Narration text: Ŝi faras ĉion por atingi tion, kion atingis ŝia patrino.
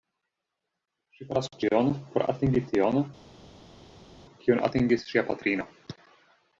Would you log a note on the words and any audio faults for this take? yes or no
no